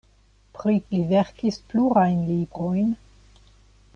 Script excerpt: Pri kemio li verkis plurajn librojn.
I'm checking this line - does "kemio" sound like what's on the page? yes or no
no